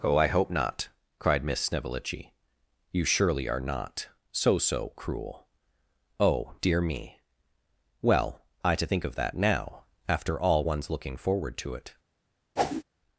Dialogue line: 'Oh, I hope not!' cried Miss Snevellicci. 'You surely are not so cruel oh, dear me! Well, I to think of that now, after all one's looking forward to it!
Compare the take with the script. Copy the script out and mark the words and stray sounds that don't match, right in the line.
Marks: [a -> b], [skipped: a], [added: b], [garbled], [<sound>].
'Oh, I hope not!' cried Miss Snevellicci. 'You surely are not so [added: so] cruel oh, dear me! Well, I to think of that now, after all one's looking forward to it! [whoosh]